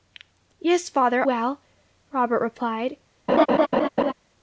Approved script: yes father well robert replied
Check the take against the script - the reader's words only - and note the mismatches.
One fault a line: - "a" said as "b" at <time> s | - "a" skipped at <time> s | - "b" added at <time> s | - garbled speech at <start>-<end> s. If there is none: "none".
none